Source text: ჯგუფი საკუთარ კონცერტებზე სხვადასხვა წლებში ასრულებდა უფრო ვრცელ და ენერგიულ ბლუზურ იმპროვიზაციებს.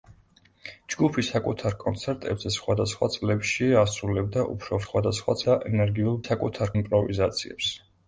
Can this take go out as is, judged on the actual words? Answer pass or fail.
fail